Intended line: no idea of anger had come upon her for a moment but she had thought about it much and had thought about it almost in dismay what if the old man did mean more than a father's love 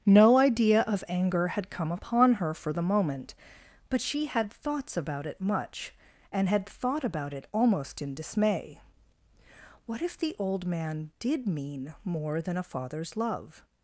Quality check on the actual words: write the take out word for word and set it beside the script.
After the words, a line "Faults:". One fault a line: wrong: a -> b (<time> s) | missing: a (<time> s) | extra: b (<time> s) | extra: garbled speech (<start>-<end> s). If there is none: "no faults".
no idea of anger had come upon her for the moment but she had thoughts about it much and had thought about it almost in dismay what if the old man did mean more than a father's love
Faults:
wrong: a -> the (2.7 s)
wrong: thought -> thoughts (4.5 s)